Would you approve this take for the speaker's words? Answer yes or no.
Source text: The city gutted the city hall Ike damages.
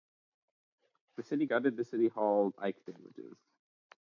yes